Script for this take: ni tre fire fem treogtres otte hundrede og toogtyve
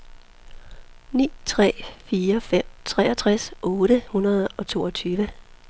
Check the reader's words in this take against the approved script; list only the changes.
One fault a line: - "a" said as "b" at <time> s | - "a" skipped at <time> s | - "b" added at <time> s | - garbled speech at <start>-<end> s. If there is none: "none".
none